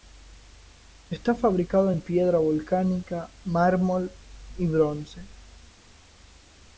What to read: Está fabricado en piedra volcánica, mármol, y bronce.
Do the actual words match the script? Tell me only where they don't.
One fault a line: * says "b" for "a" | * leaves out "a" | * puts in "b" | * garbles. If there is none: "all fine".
all fine